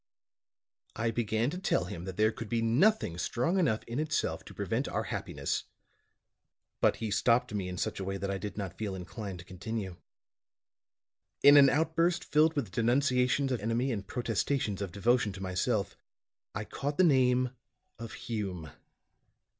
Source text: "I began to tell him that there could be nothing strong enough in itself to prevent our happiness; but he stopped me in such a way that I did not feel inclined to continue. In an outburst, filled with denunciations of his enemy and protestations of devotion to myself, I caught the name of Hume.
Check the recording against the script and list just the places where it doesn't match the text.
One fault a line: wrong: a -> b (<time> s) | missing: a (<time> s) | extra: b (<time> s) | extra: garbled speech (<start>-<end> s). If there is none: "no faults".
missing: his (13.6 s)